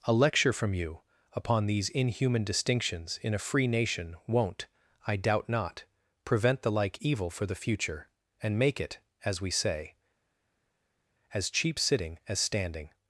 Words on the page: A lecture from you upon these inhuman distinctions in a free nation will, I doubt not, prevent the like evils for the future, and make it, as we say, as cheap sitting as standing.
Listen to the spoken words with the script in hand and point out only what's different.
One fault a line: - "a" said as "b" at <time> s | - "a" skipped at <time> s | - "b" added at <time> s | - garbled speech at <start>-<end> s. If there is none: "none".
- "will" said as "won't" at 4.3 s
- "evils" said as "evil" at 7.0 s